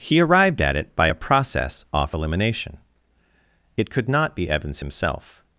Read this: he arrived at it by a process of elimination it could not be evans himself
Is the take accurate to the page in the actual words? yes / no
no